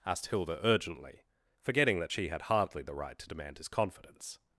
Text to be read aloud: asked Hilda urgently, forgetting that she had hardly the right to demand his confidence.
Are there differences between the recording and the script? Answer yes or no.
no